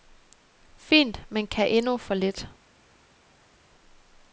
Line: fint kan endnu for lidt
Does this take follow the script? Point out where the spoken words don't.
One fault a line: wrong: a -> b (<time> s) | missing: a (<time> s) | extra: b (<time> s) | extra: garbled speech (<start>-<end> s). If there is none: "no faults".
extra: men (1.3 s)